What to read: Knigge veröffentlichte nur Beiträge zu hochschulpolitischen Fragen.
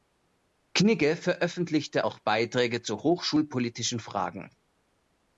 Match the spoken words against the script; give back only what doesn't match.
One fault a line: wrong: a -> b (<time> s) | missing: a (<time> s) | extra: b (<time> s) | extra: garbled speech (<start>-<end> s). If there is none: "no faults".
wrong: nur -> auch (2.0 s)